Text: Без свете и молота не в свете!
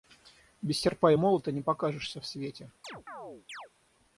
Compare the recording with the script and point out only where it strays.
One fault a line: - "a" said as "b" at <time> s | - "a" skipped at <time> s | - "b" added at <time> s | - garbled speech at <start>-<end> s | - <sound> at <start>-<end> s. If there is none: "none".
- "свете" said as "серпа" at 0.8 s
- "покажешься" added at 1.6 s
- chirp at 2.8-3.7 s